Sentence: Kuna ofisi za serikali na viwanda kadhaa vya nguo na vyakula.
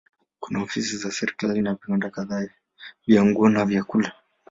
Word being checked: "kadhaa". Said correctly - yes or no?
yes